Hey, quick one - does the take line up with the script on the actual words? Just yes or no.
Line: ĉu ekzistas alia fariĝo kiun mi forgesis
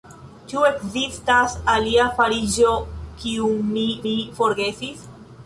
no